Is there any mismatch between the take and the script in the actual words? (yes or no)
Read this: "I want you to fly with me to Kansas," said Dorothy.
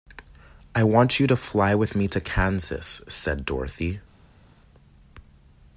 no